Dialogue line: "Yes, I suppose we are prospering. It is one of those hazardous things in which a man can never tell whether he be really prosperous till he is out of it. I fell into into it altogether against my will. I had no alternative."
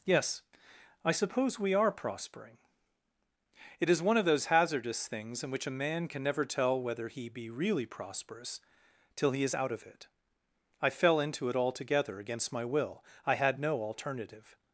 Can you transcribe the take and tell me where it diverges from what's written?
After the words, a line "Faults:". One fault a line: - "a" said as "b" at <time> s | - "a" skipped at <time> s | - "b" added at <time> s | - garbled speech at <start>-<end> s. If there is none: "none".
"Yes, I suppose we are prospering. It is one of those hazardous things in which a man can never tell whether he be really prosperous till he is out of it. I fell into it altogether against my will. I had no alternative."
Faults:
- "into" skipped at 11.5 s